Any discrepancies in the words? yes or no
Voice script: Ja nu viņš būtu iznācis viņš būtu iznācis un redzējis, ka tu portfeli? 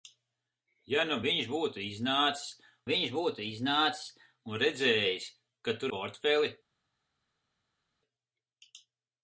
no